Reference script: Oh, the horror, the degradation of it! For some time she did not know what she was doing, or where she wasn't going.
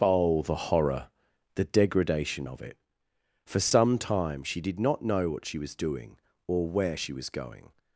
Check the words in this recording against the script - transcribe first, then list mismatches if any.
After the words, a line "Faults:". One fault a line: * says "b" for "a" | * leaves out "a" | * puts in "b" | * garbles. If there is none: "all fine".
Oh, the horror, the degradation of it! For some time she did not know what she was doing, or where she was going.
Faults:
* says "was" for "wasn't"